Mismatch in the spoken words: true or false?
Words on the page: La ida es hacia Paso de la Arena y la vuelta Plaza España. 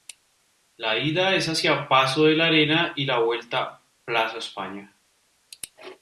false